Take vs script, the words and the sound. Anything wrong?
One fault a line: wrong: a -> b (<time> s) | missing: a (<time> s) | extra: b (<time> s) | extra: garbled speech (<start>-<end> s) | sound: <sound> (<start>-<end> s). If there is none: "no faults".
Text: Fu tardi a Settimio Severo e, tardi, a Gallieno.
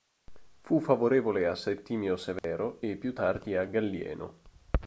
wrong: tardi -> favorevole (0.8 s)
sound: dropout (2.4-2.4 s)
extra: più (2.9 s)